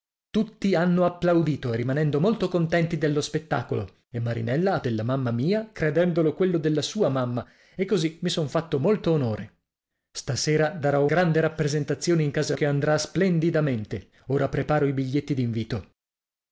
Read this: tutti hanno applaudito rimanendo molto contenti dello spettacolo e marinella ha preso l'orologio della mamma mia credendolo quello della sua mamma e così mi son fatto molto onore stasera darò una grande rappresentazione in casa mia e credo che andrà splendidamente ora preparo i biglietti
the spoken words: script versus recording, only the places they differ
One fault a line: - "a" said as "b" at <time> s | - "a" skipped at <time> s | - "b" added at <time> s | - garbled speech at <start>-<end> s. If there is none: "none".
- "preso l'orologio" skipped at 4.8 s
- "una" skipped at 11.1 s
- "mia e credo" skipped at 12.5 s